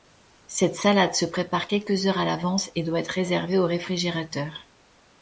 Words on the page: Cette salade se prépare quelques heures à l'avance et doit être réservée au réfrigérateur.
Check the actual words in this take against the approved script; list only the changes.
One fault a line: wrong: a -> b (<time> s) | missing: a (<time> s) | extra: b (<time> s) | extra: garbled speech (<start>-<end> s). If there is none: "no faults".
no faults